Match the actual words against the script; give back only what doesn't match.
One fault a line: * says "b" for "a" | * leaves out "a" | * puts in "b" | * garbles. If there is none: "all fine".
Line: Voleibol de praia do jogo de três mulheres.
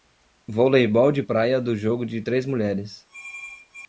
all fine